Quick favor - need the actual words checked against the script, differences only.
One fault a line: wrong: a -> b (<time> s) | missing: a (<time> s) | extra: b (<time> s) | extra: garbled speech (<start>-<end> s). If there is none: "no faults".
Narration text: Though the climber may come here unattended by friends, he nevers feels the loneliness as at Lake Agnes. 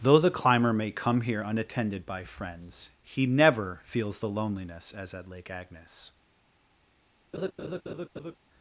wrong: nevers -> never (3.3 s)